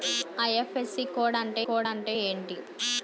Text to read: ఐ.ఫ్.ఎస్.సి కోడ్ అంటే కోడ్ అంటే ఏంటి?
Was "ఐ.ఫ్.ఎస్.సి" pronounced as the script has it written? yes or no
yes